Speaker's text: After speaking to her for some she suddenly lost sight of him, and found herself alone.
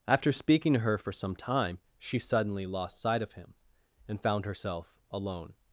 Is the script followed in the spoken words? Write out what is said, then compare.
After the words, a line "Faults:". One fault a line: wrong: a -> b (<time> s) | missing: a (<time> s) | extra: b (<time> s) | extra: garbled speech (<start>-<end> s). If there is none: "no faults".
After speaking to her for some time, she suddenly lost sight of him, and found herself alone.
Faults:
extra: time (1.4 s)